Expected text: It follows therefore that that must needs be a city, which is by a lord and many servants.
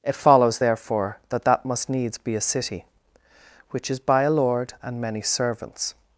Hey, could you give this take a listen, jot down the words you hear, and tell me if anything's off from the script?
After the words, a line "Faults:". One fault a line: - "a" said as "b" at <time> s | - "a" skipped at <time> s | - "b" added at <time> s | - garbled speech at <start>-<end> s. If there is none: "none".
It follows therefore that that must needs be a city, which is by a lord and many servants.
Faults:
none